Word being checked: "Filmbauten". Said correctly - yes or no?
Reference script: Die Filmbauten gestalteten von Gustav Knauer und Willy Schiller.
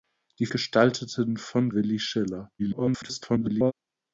no